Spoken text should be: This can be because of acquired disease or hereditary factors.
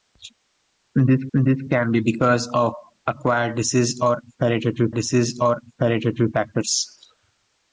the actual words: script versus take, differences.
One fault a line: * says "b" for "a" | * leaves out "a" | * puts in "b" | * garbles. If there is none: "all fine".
* puts in "this"
* puts in "disease or hereditary"